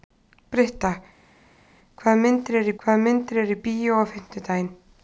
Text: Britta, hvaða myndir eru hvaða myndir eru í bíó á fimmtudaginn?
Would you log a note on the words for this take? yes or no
no